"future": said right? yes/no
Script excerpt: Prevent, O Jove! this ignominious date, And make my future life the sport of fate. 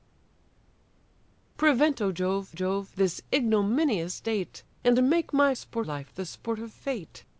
no